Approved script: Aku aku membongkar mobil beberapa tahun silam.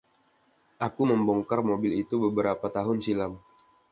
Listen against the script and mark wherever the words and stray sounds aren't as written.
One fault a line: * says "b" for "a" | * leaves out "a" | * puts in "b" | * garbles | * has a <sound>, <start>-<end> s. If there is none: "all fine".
* leaves out "aku"
* puts in "itu"